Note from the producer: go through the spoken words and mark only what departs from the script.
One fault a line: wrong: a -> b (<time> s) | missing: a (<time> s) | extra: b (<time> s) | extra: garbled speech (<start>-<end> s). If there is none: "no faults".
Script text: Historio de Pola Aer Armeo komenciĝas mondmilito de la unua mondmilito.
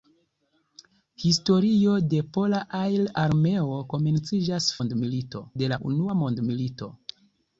no faults